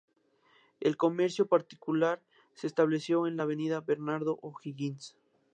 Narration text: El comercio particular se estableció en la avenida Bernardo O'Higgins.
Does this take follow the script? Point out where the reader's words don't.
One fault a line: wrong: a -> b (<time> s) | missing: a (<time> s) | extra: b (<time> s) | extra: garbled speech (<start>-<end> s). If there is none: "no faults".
no faults